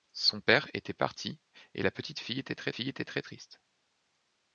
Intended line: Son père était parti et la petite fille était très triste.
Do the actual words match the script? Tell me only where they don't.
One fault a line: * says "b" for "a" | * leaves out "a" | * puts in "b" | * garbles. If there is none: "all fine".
* puts in "fille était très"